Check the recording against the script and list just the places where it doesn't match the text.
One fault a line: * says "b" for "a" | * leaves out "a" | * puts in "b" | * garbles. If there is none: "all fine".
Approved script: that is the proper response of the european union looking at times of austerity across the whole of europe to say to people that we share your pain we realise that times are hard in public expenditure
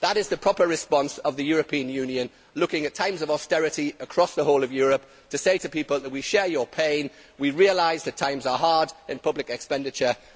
all fine